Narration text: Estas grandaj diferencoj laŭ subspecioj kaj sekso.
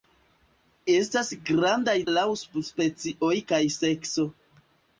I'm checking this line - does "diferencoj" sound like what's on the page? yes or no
no